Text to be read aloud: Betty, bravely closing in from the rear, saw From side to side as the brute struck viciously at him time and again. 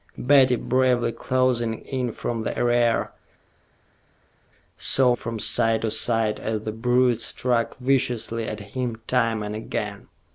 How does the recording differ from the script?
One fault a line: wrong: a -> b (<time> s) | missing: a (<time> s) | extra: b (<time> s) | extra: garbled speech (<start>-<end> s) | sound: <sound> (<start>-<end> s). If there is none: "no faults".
no faults